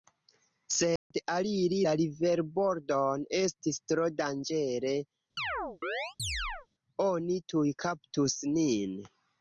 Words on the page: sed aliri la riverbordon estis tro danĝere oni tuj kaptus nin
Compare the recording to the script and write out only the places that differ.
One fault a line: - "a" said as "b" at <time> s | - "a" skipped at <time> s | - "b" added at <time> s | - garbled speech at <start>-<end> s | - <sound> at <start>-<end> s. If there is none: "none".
- dropout at 1.0-1.1 s
- chirp at 5.4-6.7 s